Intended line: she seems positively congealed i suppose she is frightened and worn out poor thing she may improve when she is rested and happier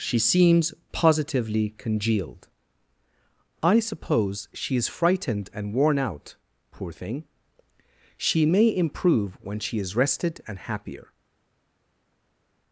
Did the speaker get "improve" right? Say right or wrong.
right